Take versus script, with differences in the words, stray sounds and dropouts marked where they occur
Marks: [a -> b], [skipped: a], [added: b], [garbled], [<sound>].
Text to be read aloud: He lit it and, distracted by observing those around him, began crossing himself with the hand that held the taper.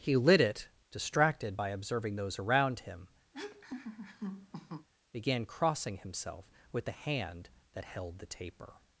He lit it [skipped: and,] distracted by observing those around him, [laugh] began crossing himself with the hand that held the taper.